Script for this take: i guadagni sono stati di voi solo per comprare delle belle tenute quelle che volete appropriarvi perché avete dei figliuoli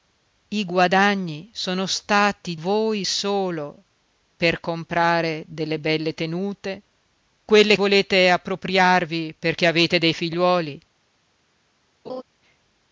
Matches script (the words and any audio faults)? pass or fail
fail